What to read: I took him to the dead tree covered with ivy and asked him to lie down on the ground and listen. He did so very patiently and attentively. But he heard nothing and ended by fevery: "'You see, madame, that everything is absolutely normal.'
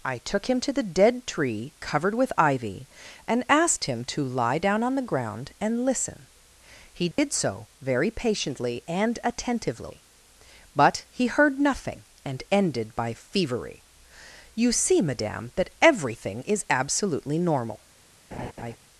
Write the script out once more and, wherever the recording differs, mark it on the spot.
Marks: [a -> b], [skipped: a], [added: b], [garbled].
I took him to the dead tree covered with ivy and asked him to lie down on the ground and listen. He did so very patiently and attentively. But he heard nothing and ended by fevery: "'You see, madame, that everything is absolutely normal.'